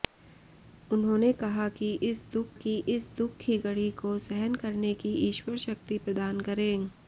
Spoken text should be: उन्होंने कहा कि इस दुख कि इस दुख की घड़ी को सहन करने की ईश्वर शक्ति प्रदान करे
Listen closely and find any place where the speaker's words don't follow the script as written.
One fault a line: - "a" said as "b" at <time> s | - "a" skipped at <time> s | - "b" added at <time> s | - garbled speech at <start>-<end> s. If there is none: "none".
none